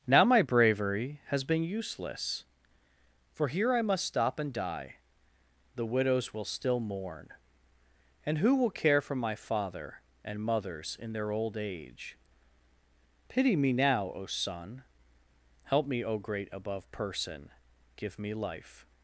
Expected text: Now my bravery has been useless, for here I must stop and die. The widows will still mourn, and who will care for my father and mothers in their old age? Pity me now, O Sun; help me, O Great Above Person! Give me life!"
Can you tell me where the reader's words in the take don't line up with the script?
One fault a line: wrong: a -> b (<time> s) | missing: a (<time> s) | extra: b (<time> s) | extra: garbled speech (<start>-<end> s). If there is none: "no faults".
no faults